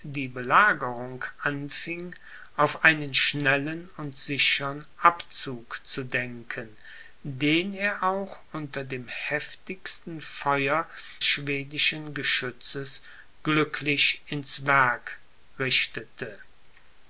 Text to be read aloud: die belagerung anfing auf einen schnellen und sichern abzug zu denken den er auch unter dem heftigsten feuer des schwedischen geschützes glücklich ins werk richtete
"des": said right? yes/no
no